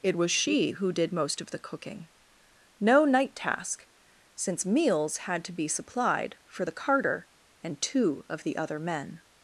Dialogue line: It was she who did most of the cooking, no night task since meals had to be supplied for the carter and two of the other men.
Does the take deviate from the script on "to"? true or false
false